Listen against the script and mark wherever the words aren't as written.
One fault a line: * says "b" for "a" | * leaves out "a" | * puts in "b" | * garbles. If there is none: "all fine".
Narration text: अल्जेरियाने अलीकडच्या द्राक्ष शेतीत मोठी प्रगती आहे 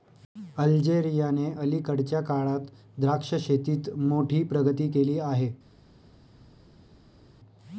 * puts in "काळात"
* puts in "केली"